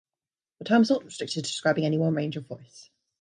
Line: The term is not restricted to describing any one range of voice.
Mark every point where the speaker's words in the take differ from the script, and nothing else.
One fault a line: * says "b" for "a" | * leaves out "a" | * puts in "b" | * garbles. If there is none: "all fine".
all fine